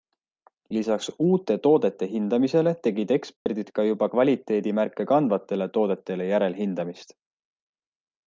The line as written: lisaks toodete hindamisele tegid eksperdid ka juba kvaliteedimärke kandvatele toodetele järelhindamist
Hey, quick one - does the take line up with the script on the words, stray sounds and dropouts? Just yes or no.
no